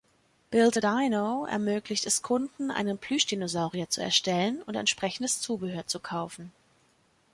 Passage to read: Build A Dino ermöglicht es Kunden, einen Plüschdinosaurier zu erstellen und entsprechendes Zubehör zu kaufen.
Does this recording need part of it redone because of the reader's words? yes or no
no